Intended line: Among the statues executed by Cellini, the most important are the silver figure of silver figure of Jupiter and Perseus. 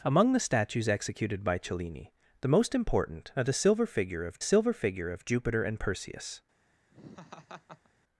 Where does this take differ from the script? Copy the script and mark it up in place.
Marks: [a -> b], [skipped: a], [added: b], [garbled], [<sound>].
Among the statues executed by Cellini, the most important are the silver figure of silver figure of Jupiter and Perseus. [laugh]